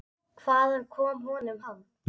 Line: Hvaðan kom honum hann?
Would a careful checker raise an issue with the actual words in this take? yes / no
no